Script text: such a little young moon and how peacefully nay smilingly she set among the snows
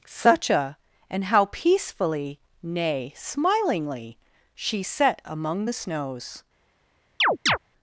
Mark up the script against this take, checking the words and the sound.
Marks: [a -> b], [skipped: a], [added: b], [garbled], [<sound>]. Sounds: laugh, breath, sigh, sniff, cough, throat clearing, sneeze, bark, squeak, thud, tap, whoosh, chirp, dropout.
such a [skipped: little young moon] and how peacefully nay smilingly she set among the snows [chirp]